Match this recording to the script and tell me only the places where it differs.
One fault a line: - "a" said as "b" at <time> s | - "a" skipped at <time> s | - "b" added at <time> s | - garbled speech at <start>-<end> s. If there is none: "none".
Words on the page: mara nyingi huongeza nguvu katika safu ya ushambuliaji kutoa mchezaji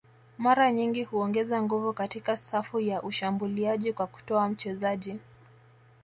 - "kwa" added at 3.9 s